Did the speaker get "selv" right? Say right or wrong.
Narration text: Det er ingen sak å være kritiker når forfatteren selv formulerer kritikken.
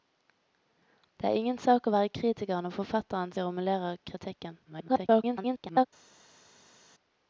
wrong